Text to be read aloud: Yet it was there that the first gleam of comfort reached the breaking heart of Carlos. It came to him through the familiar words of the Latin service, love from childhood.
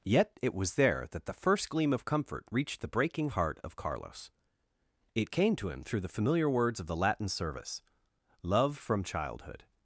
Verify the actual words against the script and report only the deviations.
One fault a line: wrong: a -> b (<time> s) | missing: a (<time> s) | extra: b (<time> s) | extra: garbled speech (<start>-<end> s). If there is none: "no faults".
no faults